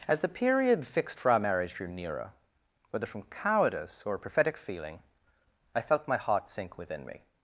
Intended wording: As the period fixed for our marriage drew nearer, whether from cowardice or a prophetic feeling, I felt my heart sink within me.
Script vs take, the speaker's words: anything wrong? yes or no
yes